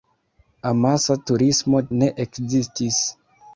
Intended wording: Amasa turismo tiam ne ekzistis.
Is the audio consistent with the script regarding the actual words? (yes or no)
no